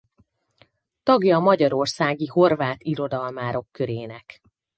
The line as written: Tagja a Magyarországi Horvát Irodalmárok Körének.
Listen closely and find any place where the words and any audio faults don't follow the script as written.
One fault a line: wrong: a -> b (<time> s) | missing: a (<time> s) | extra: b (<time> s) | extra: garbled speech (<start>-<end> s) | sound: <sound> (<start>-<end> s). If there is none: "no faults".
no faults